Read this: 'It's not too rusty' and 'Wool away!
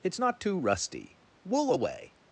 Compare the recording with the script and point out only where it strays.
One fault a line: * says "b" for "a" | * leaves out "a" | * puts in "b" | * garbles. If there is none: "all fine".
* leaves out "and"